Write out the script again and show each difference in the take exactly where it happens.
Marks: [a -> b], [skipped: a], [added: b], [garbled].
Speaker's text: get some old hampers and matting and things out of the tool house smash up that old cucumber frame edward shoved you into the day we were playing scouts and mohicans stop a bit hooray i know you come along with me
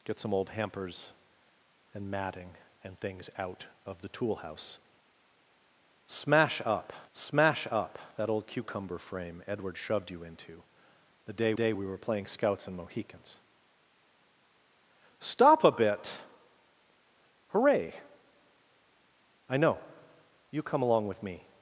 get some old hampers and matting and things out of the tool house smash up [added: smash up] that old cucumber frame edward shoved you into the day [added: day] we were playing scouts and mohicans stop a bit hooray i know you come along with me